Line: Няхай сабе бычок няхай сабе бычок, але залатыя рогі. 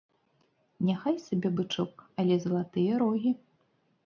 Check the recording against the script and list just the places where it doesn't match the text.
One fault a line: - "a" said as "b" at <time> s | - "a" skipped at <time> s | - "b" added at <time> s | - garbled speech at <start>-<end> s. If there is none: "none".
- "няхай сабе бычок" skipped at 1.9 s